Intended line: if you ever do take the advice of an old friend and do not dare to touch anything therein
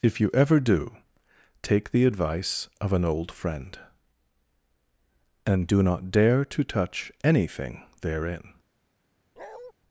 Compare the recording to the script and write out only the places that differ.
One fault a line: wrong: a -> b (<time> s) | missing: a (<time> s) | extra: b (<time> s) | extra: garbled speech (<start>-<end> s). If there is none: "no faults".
no faults